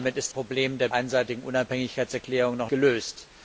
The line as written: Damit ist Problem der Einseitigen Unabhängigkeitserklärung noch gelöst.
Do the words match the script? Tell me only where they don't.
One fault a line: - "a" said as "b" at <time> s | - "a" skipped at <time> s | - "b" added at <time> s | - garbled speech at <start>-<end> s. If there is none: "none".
none